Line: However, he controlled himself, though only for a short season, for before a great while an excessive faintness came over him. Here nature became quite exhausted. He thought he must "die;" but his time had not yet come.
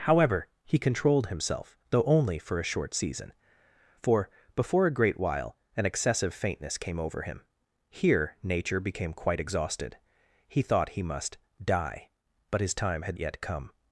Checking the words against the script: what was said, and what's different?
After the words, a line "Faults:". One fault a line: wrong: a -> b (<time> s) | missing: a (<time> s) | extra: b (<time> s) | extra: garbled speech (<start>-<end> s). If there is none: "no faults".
However, he controlled himself, though only for a short season, for before a great while an excessive faintness came over him. Here nature became quite exhausted. He thought he must "die;" but his time had yet come.
Faults:
missing: not (13.2 s)